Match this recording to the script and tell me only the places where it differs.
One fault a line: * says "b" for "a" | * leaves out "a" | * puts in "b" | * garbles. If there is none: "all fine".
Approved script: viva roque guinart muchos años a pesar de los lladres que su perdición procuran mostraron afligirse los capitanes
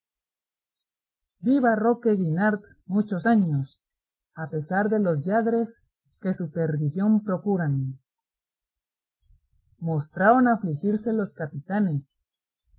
all fine